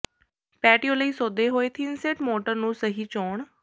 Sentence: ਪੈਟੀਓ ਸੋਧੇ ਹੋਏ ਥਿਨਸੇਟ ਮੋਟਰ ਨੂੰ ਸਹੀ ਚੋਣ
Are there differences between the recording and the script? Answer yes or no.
yes